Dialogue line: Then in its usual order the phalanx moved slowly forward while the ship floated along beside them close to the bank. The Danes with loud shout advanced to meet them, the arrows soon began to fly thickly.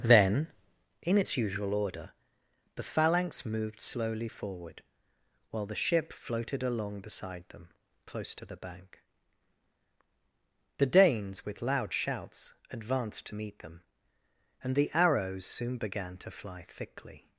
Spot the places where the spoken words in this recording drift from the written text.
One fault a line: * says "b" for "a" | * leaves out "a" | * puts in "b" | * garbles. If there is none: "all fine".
* says "shouts" for "shout"
* puts in "and"